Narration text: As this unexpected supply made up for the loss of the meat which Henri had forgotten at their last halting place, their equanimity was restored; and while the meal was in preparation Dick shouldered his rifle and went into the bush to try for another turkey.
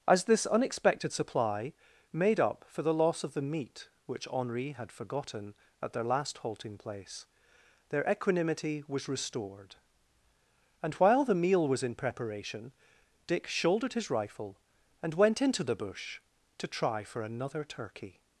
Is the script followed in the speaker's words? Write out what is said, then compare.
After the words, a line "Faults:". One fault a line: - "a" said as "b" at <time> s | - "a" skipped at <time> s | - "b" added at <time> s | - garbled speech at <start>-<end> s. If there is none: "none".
As this unexpected supply made up for the loss of the meat which Henri had forgotten at their last halting place, their equanimity was restored; and while the meal was in preparation Dick shouldered his rifle and went into the bush to try for another turkey.
Faults:
none